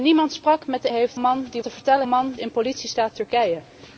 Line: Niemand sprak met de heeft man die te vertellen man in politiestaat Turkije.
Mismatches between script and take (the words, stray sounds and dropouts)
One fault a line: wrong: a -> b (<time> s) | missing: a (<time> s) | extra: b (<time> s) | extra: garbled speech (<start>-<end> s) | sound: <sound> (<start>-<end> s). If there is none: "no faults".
no faults